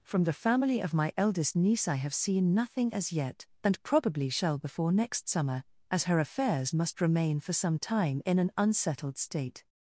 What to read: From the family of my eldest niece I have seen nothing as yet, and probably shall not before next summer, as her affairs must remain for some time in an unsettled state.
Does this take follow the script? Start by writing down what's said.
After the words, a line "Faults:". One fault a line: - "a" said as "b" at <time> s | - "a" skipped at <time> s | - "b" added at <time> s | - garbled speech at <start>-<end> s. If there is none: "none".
From the family of my eldest niece I have seen nothing as yet, and probably shall before next summer, as her affairs must remain for some time in an unsettled state.
Faults:
- "not" skipped at 4.6 s